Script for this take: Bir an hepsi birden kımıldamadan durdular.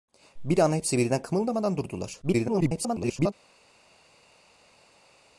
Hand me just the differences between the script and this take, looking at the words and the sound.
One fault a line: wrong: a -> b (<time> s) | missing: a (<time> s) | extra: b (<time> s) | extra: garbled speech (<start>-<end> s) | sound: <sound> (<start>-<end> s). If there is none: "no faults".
extra: garbled speech (2.2-3.3 s)